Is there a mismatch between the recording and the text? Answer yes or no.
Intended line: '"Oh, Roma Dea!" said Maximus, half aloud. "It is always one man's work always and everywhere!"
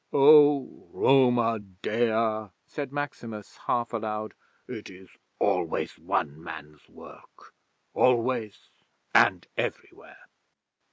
no